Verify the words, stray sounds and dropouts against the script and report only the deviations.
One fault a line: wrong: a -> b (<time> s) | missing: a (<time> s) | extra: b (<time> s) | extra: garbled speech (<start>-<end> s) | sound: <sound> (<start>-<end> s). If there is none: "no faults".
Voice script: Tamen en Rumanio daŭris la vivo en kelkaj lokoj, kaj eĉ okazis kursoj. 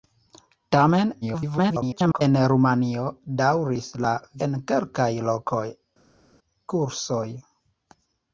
extra: garbled speech (1.2-2.2 s)
missing: vivo (4.1 s)
missing: kaj eĉ okazis (5.6 s)